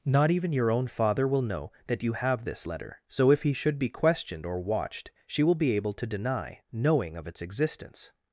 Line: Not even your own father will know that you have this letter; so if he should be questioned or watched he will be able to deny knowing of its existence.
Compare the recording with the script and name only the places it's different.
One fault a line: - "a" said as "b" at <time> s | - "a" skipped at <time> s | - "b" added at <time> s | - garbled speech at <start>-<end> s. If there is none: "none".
- "he" said as "she" at 5.3 s